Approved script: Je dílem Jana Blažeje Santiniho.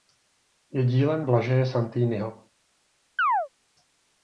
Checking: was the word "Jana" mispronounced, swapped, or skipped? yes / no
yes